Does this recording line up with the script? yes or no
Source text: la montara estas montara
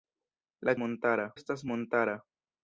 yes